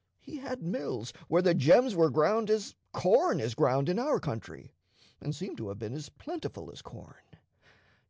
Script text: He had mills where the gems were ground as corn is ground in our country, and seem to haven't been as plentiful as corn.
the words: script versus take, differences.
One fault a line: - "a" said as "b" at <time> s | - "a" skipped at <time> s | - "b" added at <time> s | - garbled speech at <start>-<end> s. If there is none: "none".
- "haven't" said as "have" at 5.7 s